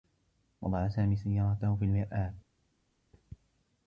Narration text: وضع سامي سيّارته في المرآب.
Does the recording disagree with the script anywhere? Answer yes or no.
no